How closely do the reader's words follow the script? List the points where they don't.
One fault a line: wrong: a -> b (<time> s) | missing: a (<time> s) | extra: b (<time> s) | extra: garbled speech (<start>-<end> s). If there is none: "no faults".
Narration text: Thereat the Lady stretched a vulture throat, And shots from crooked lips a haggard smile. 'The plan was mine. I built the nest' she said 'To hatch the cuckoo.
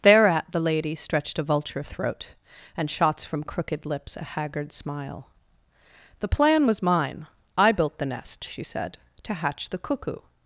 no faults